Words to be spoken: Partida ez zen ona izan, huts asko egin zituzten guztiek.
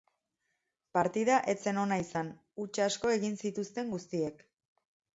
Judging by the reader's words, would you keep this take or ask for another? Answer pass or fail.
pass